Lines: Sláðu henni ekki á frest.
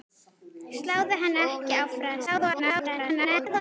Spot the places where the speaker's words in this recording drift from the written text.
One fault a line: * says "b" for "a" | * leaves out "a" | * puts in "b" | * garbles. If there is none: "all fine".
* garbles